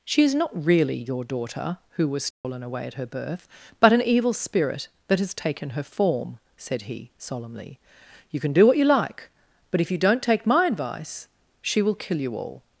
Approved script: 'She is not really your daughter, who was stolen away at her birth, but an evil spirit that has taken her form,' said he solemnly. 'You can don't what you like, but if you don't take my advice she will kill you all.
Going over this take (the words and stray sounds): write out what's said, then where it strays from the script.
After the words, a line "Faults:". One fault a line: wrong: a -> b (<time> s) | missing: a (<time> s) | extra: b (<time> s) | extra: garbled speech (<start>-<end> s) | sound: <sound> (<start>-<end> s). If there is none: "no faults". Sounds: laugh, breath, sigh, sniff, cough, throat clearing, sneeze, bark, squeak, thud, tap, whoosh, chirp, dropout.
'She is not really your daughter, who was stolen away at her birth, but an evil spirit that has taken her form,' said he solemnly. 'You can do what you like, but if you don't take my advice she will kill you all.
Faults:
sound: dropout (2.3-2.4 s)
wrong: don't -> do (8.5 s)